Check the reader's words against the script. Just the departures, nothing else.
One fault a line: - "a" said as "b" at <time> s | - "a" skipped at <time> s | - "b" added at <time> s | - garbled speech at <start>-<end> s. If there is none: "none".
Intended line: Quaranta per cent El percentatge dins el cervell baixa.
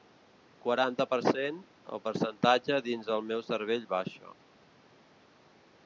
- "meu" added at 3.3 s